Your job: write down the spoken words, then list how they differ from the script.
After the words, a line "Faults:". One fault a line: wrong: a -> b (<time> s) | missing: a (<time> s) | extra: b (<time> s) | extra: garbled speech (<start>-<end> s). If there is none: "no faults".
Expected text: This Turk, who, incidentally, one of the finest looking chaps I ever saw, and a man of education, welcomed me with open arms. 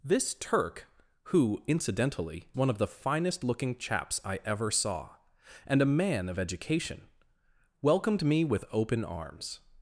This Turk, who, incidentally, one of the finest looking chaps I ever saw, and a man of education, welcomed me with open arms.
Faults:
no faults